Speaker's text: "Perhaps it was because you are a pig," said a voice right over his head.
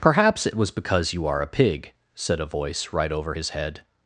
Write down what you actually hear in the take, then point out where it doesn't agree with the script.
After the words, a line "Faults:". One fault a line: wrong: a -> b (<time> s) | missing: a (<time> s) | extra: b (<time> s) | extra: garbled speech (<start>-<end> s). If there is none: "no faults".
"Perhaps it was because you are a pig," said a voice right over his head.
Faults:
no faults